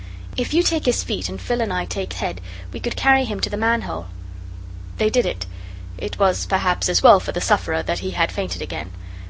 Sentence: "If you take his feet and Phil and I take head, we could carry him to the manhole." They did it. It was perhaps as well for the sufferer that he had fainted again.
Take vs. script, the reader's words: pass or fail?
pass